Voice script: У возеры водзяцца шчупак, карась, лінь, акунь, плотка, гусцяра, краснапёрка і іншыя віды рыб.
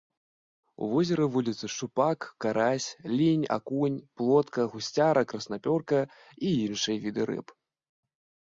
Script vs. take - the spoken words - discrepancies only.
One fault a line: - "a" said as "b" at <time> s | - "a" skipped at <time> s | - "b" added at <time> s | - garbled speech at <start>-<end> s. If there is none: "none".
none